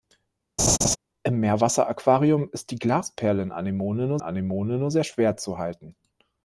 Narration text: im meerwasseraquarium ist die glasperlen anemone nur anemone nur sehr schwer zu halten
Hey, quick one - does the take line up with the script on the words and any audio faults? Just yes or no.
no